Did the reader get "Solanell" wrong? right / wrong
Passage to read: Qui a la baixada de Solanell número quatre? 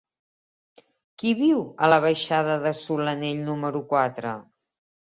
right